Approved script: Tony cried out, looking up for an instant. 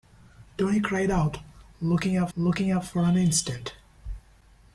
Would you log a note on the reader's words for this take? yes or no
yes